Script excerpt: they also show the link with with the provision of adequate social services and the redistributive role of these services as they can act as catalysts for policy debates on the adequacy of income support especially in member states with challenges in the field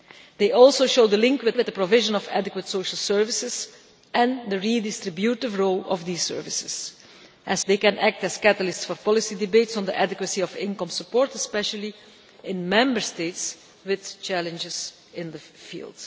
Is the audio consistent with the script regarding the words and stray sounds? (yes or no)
yes